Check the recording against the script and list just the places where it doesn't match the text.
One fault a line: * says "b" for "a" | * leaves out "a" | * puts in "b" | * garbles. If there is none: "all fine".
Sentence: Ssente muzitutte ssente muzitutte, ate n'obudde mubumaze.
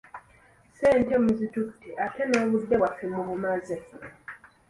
* leaves out "ssente muzitutte"
* puts in "bwaffe"